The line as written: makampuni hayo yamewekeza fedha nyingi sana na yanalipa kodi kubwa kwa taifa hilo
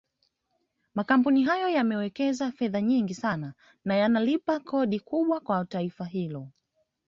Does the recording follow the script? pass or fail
pass